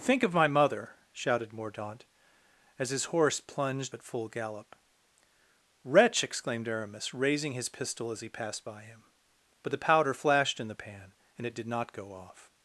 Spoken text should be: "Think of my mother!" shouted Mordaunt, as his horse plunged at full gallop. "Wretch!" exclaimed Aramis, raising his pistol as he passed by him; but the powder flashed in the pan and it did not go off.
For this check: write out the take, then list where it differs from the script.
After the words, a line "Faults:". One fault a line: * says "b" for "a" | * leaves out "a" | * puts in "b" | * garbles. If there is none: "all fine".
"Think of my mother!" shouted Mordaunt, as his horse plunged at full gallop. "Wretch!" exclaimed Aramis, raising his pistol as he passed by him; but the powder flashed in the pan and it did not go off.
Faults:
all fine